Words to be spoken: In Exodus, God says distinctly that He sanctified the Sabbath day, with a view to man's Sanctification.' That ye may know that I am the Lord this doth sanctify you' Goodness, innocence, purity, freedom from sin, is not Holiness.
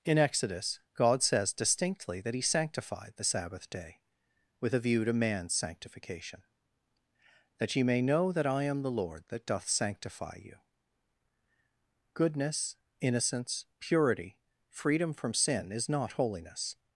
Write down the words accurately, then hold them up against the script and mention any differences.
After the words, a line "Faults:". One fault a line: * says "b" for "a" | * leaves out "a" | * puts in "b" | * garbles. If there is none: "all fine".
In Exodus, God says distinctly that He sanctified the Sabbath day, with a view to man's Sanctification.' That ye may know that I am the Lord that doth sanctify you' Goodness, innocence, purity, freedom from sin, is not Holiness.
Faults:
* says "that" for "this"